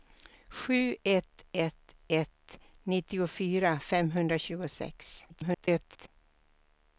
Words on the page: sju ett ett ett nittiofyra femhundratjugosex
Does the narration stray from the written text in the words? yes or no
yes